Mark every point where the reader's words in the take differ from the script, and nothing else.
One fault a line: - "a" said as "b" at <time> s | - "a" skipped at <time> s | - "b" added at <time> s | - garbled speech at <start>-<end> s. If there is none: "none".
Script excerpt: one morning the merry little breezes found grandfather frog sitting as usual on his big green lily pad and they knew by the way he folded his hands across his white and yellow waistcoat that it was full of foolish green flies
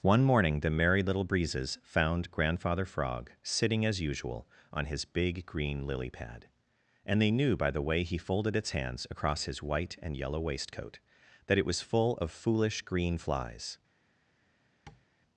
- "his" said as "its" at 8.6 s